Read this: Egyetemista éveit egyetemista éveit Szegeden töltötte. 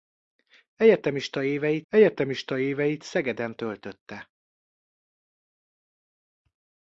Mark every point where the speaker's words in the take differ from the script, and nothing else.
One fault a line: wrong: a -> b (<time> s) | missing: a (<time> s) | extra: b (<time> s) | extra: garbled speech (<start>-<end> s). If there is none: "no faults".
no faults